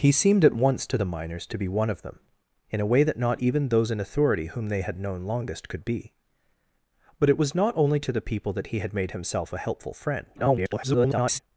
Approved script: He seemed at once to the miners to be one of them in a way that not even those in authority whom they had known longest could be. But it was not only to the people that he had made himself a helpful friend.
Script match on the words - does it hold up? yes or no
no